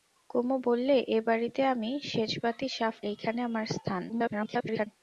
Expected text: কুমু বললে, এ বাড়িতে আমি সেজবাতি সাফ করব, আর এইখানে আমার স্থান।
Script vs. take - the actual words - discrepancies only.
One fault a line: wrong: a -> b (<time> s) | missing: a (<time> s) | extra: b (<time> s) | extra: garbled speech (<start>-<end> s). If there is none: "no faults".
missing: করব আর (3.0 s)
extra: garbled speech (4.1-4.9 s)